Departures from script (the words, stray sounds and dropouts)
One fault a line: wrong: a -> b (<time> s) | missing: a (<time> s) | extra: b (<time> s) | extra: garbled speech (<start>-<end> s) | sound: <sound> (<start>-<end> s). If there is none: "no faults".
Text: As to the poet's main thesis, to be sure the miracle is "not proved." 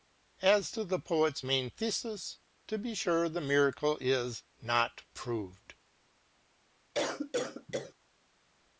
sound: cough (6.9-7.9 s)